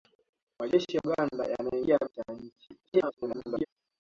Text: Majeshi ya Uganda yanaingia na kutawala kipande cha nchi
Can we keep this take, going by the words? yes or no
no